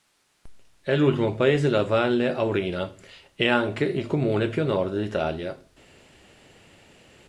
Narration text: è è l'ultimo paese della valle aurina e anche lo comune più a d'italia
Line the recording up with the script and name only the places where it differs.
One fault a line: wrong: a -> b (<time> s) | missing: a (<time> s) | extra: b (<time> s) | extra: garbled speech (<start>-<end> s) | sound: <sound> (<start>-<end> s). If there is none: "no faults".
missing: è (0.9 s)
wrong: lo -> il (3.9 s)
extra: nord (4.7 s)